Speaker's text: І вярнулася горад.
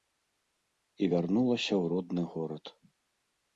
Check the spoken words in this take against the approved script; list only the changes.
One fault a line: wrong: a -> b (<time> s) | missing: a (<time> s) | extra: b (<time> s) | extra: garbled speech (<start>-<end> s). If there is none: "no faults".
extra: ў родны (1.7 s)